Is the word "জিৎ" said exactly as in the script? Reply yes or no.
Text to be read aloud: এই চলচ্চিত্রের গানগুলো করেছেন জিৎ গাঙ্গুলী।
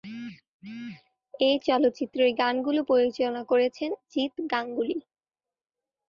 yes